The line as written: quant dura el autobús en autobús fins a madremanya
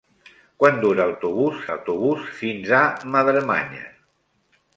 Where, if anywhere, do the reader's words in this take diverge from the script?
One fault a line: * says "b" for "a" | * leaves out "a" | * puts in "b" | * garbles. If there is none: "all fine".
all fine